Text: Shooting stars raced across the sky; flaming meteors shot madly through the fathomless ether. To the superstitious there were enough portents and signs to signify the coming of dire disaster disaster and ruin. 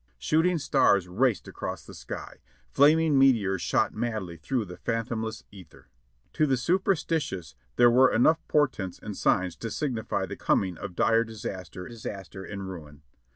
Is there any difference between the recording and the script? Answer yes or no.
no